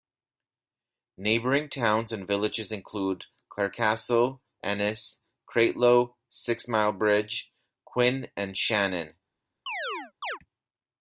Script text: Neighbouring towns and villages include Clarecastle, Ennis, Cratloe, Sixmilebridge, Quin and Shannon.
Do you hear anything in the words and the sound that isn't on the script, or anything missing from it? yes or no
yes